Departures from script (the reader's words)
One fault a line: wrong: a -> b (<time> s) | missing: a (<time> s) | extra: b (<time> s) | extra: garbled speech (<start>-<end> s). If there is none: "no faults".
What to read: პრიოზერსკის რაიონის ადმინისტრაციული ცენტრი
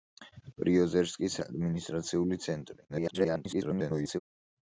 missing: რაიონის (1.4 s)
extra: garbled speech (2.9-4.2 s)